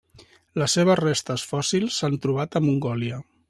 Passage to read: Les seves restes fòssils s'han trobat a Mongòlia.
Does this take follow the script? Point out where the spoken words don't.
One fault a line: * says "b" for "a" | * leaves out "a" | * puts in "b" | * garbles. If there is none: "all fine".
all fine